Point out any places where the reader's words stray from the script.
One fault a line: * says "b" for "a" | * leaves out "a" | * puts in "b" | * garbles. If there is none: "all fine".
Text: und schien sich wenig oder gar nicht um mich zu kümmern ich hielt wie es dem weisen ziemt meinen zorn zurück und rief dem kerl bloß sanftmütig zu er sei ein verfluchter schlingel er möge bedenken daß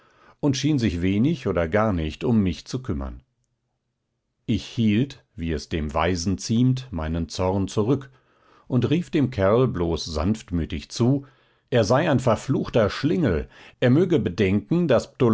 all fine